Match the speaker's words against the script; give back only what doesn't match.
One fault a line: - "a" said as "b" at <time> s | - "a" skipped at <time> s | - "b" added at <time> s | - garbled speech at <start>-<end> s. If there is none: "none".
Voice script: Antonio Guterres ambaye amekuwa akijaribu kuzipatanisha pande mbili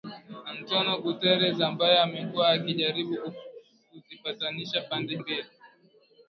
none